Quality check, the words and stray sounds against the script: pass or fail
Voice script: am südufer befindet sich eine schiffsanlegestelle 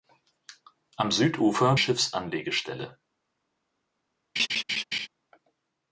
fail